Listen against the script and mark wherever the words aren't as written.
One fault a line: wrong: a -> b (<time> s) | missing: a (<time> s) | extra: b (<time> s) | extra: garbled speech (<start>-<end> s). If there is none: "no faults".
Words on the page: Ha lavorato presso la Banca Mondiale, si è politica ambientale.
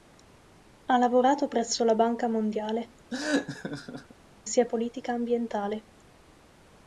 no faults